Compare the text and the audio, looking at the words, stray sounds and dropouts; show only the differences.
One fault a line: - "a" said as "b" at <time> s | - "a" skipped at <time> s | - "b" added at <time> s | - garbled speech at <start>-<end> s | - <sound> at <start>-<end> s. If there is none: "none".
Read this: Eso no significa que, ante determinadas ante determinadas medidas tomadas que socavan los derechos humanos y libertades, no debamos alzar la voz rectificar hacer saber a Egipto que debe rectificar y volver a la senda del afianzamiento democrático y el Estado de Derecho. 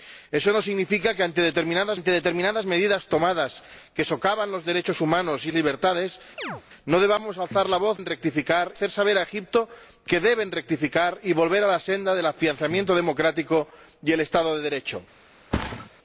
- chirp at 6.4-6.6 s
- thud at 15.5-15.9 s